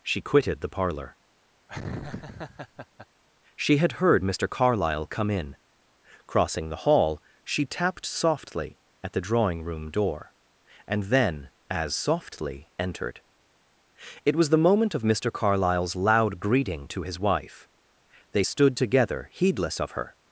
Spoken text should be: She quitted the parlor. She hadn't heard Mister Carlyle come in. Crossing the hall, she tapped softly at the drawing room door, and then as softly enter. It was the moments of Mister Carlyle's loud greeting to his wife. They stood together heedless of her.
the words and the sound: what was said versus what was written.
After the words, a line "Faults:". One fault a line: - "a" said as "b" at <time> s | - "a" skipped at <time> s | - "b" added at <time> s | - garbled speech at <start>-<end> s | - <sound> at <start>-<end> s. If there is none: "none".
She quitted the parlor. She had heard Mister Carlyle come in. Crossing the hall, she tapped softly at the drawing room door, and then as softly entered. It was the moment of Mister Carlyle's loud greeting to his wife. They stood together heedless of her.
Faults:
- laugh at 1.7-3.1 s
- "hadn't" said as "had" at 3.8 s
- "enter" said as "entered" at 12.8 s
- "moments" said as "moment" at 14.6 s